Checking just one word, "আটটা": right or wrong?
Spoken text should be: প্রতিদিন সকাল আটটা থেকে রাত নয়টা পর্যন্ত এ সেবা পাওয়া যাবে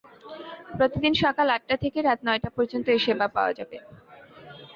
right